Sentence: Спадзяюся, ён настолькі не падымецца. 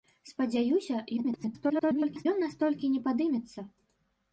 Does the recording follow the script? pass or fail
fail